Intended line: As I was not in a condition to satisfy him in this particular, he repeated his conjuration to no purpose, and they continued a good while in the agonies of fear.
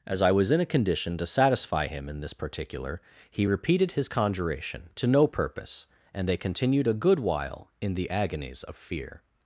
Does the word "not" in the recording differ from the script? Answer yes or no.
yes